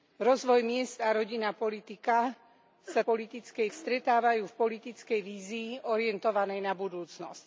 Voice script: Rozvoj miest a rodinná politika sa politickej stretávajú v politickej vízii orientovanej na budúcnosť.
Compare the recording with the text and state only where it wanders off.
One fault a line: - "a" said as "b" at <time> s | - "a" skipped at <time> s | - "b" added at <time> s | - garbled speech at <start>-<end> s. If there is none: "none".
none